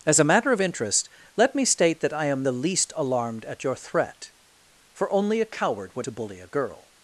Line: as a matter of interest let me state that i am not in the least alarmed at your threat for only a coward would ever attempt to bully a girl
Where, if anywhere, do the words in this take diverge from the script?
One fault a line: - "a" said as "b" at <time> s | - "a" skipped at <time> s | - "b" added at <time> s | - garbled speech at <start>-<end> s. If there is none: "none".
- "not in" skipped at 2.4 s
- "ever attempt" skipped at 6.1 s